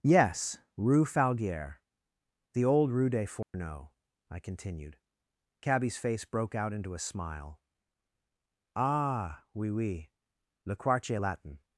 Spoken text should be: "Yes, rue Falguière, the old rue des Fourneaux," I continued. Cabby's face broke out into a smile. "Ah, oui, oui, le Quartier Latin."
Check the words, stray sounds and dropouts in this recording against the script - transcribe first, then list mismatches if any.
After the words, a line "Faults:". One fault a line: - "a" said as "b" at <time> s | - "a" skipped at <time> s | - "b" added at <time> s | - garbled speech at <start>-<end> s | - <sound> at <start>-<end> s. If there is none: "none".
"Yes, rue Falguière, the old rue des Fourneaux," I continued. Cabby's face broke out into a smile. "Ah, oui, oui, le Quartier Latin."
Faults:
- dropout at 3.4-3.5 s